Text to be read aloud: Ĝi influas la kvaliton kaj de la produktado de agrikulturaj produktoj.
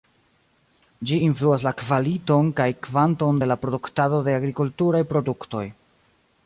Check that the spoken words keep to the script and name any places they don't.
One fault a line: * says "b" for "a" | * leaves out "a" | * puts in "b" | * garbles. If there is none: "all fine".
* puts in "kvanton"